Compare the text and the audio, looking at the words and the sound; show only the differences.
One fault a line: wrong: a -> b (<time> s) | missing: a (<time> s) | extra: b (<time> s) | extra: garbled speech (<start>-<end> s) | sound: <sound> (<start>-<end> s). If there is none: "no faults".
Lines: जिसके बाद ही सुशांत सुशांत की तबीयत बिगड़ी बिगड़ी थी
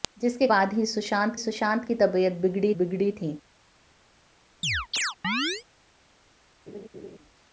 sound: chirp (4.6-5.6 s)
sound: laugh (6.7-7.2 s)